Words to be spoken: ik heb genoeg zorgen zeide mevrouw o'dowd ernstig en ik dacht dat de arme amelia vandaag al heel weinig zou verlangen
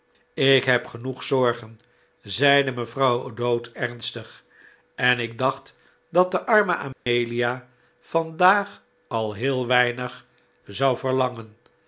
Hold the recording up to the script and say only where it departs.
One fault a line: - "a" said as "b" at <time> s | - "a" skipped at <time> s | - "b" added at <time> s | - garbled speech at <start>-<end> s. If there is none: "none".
none